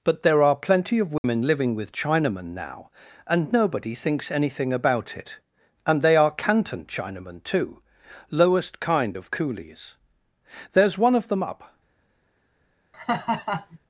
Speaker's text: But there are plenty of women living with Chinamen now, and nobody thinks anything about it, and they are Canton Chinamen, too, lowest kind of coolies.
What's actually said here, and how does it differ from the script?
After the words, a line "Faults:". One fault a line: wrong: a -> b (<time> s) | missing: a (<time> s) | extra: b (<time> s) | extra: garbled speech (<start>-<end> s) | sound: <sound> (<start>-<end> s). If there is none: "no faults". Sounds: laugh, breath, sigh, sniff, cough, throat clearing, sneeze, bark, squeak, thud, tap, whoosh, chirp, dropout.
But there are plenty of women living with Chinamen now, and nobody thinks anything about it, and they are Canton Chinamen, too, lowest kind of coolies. There's one of them up
Faults:
sound: dropout (1.2-1.2 s)
extra: There's one of them up (10.7 s)
sound: laugh (12.9-13.8 s)